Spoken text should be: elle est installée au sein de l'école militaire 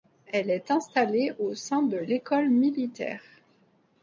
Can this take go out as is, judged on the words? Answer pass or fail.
pass